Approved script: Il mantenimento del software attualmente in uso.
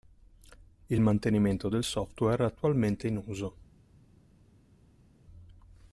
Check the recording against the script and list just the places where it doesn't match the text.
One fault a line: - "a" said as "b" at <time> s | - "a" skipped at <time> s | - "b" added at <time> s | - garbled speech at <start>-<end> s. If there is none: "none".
none